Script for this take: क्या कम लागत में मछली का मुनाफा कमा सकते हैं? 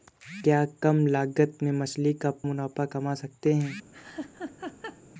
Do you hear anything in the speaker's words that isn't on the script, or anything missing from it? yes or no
no